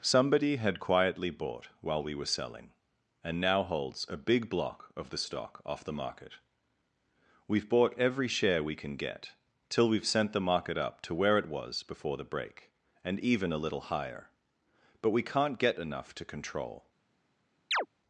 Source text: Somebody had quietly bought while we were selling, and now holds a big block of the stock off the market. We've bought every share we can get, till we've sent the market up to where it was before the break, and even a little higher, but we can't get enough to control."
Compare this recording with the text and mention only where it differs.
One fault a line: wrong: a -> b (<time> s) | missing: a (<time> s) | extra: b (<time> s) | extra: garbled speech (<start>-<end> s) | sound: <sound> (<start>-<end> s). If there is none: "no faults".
sound: chirp (17.7-17.9 s)